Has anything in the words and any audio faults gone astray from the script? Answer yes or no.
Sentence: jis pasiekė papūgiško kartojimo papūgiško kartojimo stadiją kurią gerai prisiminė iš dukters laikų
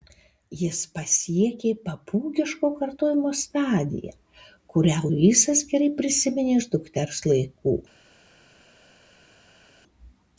yes